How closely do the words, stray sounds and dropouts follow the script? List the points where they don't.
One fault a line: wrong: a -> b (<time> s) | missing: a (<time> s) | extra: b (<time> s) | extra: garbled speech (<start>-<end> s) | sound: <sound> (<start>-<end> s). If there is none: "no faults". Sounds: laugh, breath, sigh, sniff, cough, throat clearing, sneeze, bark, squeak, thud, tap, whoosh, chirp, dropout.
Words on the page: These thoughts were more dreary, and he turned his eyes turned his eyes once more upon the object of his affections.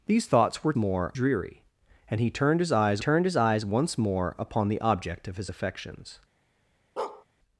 sound: bark (7.0-7.3 s)